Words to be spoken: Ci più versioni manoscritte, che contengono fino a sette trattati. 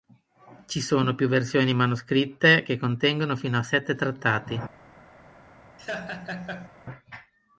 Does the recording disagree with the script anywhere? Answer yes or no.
yes